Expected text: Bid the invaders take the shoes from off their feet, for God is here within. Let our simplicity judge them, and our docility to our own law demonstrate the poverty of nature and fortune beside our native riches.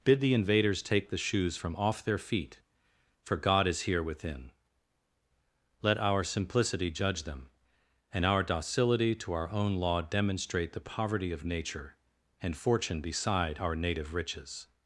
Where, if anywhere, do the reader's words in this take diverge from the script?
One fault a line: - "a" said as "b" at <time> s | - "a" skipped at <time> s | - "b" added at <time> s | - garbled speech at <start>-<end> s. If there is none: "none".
none